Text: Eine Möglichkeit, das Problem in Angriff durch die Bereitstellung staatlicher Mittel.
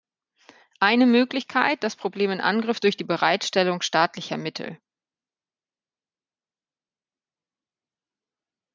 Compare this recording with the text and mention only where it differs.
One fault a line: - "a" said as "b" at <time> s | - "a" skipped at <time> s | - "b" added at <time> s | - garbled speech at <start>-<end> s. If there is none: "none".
none